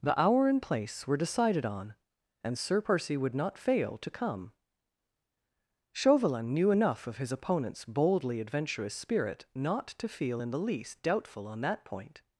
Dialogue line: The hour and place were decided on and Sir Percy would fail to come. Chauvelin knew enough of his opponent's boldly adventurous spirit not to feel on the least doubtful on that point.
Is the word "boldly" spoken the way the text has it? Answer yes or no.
yes